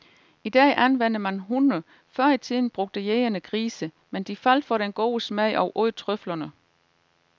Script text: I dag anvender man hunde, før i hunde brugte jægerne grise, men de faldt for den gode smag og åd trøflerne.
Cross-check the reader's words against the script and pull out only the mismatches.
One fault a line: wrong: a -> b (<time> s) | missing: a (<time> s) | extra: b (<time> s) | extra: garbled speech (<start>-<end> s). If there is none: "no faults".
wrong: hunde -> tiden (2.4 s)